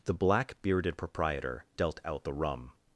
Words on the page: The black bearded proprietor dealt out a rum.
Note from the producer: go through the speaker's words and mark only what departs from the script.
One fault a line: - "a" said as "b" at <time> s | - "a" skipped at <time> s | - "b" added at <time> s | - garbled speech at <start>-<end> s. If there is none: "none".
- "a" said as "the" at 2.2 s